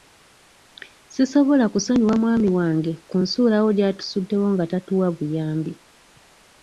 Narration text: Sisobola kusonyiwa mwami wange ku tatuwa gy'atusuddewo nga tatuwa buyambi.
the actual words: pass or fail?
fail